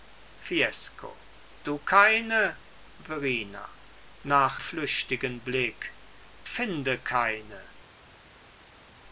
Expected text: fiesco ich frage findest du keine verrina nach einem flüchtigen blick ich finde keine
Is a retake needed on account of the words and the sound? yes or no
yes